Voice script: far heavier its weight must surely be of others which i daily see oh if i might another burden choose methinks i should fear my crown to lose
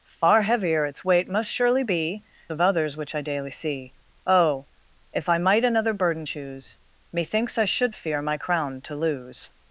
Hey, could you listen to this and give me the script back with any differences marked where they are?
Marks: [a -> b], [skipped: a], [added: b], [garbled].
far heavier its weight must surely be of others which i daily see oh if i might another burden choose methinks i should fear my crown to lose